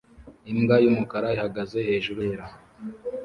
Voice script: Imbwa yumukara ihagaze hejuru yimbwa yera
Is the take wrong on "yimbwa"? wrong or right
wrong